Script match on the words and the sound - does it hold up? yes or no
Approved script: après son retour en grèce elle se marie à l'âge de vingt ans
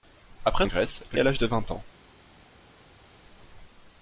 no